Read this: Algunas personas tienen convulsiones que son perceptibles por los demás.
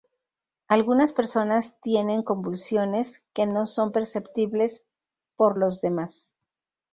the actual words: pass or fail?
fail